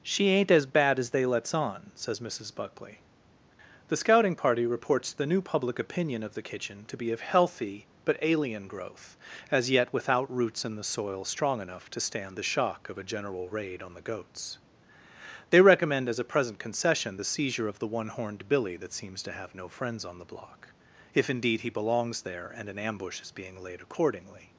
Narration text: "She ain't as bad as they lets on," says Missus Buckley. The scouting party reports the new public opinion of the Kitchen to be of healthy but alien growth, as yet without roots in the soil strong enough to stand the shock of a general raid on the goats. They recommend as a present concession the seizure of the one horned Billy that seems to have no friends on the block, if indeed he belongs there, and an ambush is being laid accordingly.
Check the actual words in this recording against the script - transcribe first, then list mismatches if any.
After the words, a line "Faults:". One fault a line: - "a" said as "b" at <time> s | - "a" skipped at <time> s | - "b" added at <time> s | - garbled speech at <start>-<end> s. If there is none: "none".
"She ain't as bad as they lets on," says Missus Buckley. The scouting party reports the new public opinion of the Kitchen to be of healthy but alien growth, as yet without roots in the soil strong enough to stand the shock of a general raid on the goats. They recommend as a present concession the seizure of the one horned Billy that seems to have no friends on the block, if indeed he belongs there, and an ambush is being laid accordingly.
Faults:
none